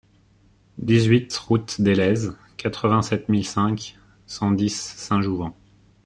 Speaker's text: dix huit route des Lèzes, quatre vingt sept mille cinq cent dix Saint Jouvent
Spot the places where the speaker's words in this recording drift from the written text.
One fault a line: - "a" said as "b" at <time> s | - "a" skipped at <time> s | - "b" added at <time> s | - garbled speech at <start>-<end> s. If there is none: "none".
none